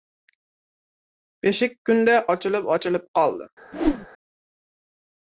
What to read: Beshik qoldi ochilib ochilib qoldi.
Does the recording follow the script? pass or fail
fail